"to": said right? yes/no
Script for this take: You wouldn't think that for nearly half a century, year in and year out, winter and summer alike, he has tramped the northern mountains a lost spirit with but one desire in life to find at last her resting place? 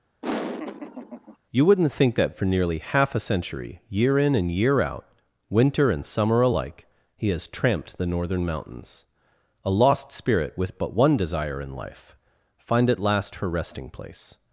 no